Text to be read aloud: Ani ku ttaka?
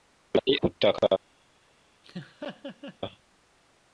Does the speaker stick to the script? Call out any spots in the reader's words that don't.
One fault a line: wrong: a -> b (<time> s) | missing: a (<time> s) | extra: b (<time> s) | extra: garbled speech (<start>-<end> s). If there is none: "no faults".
no faults